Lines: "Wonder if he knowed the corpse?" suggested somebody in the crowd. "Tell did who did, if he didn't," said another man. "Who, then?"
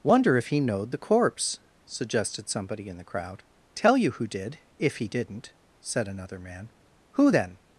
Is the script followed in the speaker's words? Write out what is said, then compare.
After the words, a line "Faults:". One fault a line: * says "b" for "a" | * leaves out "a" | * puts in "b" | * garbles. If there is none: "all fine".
"Wonder if he knowed the corpse?" suggested somebody in the crowd. "Tell you who did, if he didn't," said another man. "Who, then?"
Faults:
* says "you" for "did"